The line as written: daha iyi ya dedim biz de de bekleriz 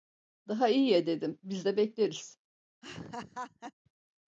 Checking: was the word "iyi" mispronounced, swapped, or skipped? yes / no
no